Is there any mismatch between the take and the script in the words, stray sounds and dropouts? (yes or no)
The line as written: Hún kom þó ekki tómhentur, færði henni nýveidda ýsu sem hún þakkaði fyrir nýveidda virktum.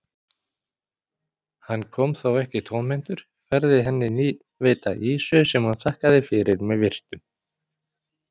yes